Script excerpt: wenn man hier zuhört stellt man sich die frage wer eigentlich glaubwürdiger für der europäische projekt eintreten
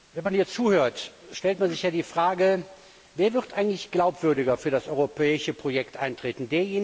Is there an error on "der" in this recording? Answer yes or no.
yes